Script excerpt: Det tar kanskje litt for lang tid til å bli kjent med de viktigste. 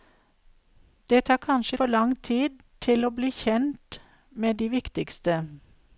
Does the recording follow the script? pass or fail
fail